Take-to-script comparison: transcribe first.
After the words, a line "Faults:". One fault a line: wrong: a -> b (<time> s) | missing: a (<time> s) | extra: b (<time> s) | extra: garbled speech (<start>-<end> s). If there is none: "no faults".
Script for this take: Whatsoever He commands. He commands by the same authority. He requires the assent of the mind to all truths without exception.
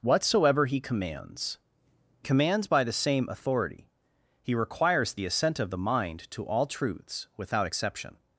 Whatsoever He commands. Commands by the same authority. He requires the assent of the mind to all truths without exception.
Faults:
missing: He (1.6 s)